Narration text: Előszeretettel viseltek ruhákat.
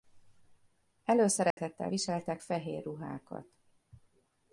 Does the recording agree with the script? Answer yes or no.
no